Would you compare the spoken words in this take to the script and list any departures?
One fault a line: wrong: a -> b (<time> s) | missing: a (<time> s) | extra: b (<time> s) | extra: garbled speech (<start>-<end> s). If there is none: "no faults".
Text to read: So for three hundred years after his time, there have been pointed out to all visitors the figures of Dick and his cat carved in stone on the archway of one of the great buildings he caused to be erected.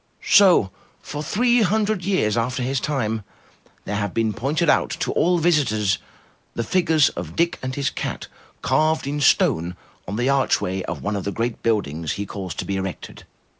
no faults